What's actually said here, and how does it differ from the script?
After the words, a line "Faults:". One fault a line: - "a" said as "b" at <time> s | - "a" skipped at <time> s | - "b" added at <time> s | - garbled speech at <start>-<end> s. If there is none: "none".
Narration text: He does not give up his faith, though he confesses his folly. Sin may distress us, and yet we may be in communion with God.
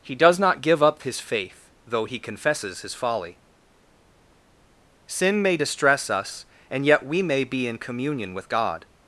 He does not give up his faith, though he confesses his folly. Sin may distress us, and yet we may be in communion with God.
Faults:
none